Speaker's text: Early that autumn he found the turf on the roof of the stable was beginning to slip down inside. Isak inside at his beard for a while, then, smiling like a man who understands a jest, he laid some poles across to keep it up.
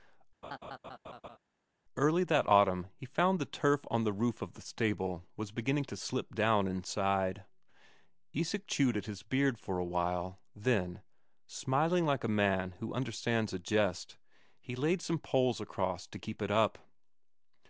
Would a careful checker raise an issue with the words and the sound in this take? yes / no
yes